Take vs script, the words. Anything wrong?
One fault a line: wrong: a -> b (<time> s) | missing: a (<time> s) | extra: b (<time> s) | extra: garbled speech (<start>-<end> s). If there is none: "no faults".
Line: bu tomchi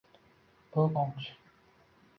no faults